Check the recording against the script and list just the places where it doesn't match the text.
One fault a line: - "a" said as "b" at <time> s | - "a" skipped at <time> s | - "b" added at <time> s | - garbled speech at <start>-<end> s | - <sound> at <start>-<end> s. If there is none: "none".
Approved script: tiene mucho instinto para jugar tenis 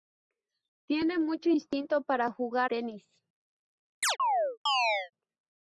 - chirp at 4.0-5.1 s